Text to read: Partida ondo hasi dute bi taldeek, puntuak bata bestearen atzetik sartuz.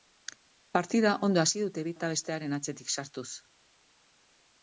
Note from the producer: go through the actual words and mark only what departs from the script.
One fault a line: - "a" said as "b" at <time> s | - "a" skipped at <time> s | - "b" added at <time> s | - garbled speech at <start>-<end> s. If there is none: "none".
- "taldeek puntuak" skipped at 1.9 s